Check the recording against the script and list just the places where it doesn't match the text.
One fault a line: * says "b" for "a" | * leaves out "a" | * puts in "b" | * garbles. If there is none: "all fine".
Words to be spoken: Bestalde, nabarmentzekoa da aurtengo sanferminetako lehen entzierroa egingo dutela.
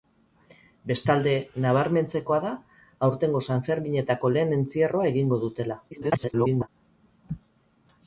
* garbles